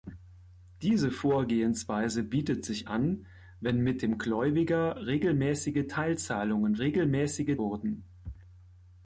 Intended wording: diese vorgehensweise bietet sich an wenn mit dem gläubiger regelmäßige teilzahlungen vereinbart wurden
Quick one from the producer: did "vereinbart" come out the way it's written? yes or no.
no